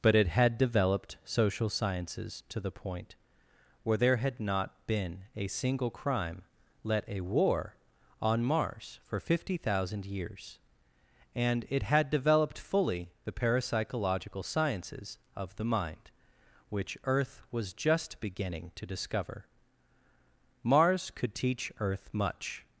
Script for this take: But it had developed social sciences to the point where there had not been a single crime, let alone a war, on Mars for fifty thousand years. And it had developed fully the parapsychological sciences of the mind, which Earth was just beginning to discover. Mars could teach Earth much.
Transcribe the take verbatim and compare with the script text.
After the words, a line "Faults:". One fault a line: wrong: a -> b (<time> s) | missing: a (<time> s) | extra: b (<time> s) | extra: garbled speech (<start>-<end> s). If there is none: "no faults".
But it had developed social sciences to the point where there had not been a single crime, let a war, on Mars for fifty thousand years. And it had developed fully the parapsychological sciences of the mind, which Earth was just beginning to discover. Mars could teach Earth much.
Faults:
missing: alone (7.0 s)